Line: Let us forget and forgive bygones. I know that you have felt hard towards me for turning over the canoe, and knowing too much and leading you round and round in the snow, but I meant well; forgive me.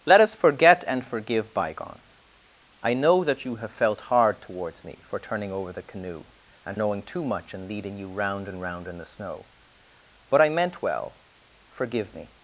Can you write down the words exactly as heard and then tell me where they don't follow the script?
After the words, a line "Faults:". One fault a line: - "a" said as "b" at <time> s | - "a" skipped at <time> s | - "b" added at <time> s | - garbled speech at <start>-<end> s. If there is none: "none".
Let us forget and forgive bygones. I know that you have felt hard towards me for turning over the canoe, and knowing too much and leading you round and round in the snow, but I meant well; forgive me.
Faults:
none